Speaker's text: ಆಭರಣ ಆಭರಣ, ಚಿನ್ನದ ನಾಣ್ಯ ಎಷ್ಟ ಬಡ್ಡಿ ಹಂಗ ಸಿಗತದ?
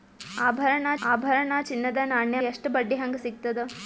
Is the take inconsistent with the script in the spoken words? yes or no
no